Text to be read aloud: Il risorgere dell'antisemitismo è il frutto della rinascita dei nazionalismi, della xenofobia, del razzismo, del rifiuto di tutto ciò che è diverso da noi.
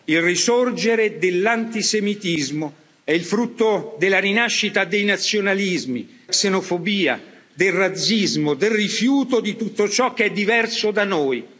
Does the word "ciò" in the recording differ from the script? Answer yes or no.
no